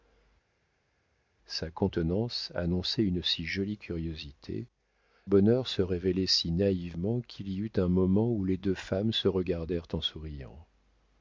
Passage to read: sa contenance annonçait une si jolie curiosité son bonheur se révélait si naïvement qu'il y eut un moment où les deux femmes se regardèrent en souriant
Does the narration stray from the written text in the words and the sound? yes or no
yes